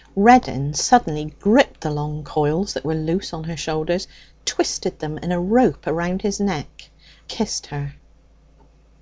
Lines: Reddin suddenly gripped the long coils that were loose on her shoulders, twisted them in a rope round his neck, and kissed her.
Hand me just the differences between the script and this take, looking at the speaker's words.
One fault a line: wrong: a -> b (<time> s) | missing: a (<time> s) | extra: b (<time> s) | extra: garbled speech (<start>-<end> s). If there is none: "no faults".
missing: and (6.9 s)